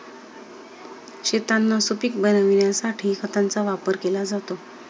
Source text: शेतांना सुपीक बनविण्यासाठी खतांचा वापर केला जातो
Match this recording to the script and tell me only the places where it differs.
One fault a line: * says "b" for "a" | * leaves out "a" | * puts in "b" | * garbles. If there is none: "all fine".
all fine